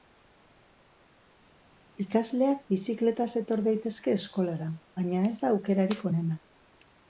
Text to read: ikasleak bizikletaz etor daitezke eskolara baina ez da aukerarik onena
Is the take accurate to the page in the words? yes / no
yes